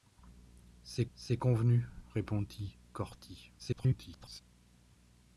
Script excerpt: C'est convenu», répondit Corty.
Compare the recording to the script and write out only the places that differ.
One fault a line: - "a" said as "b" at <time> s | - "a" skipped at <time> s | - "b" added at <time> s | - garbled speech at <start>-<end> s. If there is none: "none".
- "c'est" added at 1.1 s
- garbled speech at 3.6-4.4 s